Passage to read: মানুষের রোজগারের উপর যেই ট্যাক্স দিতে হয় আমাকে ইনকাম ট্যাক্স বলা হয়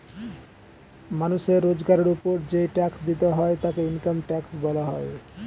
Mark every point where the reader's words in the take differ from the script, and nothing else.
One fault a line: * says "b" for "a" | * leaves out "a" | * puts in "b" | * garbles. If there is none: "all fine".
* says "তাকে" for "আমাকে"